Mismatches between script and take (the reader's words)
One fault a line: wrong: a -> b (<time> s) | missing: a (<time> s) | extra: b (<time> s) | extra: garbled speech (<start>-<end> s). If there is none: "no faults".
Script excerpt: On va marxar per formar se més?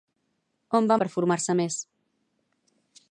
missing: marxar (1.0 s)